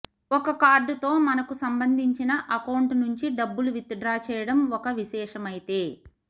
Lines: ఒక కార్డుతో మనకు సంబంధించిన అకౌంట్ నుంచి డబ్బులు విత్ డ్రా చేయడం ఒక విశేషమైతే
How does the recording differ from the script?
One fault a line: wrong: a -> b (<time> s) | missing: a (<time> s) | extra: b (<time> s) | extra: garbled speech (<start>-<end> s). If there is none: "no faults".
no faults